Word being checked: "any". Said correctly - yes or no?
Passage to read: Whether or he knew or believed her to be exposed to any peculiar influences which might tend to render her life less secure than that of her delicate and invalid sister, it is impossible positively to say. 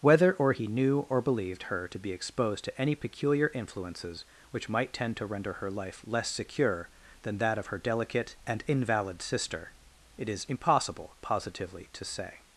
yes